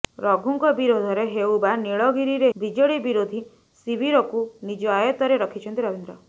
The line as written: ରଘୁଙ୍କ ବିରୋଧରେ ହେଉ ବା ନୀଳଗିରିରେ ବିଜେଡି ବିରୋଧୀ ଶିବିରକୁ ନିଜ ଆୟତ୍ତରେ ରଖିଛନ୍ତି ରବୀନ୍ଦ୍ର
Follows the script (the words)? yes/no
yes